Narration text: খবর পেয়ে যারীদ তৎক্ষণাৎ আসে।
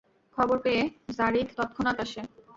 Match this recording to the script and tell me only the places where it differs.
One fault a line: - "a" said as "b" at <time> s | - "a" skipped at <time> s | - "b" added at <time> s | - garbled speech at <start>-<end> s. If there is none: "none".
none